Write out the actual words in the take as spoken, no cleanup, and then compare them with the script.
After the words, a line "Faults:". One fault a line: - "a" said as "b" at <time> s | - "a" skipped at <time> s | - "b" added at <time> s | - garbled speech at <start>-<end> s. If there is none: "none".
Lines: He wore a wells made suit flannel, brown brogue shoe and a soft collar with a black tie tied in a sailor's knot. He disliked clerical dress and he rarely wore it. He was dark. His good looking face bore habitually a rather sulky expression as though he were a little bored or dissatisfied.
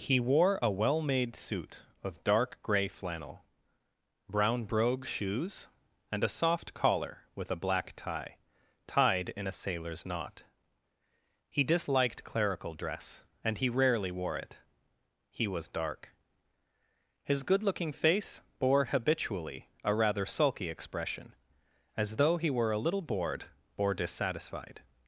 He wore a well made suit of dark grey flannel, brown brogue shoes and a soft collar with a black tie tied in a sailor's knot. He disliked clerical dress and he rarely wore it. He was dark. His good looking face bore habitually a rather sulky expression as though he were a little bored or dissatisfied.
Faults:
- "wells" said as "well" at 0.7 s
- "of dark grey" added at 2.0 s
- "shoe" said as "shoes" at 5.0 s